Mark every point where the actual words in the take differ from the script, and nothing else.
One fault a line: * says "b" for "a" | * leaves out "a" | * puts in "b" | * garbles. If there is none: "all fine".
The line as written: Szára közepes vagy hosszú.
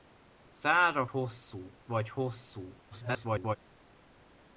* says "hosszú" for "közepes"
* garbles